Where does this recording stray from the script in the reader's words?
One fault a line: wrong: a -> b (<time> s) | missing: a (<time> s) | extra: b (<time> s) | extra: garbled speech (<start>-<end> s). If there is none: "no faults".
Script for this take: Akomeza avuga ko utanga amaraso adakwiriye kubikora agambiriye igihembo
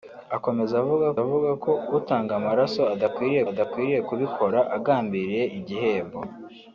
extra: avuga (1.2 s)
extra: adakwiriye (3.5 s)